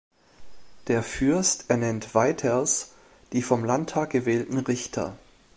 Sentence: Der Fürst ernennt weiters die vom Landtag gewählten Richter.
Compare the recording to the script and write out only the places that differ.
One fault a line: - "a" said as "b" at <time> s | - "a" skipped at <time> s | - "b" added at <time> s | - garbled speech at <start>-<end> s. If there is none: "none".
none